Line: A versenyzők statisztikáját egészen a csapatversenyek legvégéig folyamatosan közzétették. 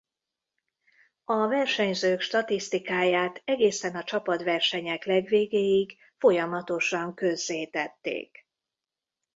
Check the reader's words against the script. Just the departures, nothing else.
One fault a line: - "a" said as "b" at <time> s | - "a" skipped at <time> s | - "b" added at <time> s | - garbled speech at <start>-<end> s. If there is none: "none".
none